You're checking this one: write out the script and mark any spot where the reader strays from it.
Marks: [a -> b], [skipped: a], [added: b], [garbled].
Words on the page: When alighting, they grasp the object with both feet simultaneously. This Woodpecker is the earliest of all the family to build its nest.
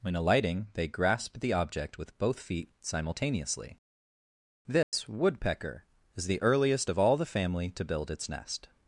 When alighting, they grasp the object with both feet simultaneously. This Woodpecker is the earliest of all the family to build its nest.